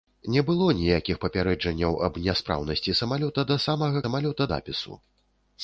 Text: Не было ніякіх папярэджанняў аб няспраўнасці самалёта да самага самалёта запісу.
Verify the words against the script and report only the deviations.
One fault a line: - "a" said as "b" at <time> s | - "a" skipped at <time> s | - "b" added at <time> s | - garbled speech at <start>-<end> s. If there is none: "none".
none